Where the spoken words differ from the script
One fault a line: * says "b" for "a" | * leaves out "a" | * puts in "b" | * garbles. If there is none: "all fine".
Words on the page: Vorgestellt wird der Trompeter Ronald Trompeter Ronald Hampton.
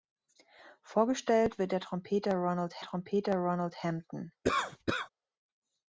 all fine